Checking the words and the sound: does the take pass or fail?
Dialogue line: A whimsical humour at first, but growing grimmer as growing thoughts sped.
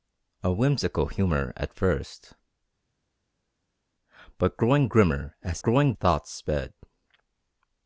pass